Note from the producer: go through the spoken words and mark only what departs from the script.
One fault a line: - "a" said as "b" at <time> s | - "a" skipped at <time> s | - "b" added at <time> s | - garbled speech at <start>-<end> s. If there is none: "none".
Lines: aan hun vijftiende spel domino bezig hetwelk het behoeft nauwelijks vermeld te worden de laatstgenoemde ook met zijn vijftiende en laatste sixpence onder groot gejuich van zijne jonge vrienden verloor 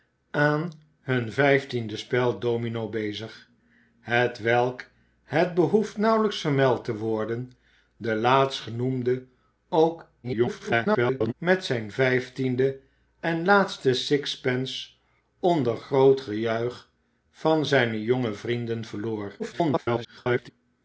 - garbled speech at 10.2-11.3 s
- garbled speech at 19.4-20.5 s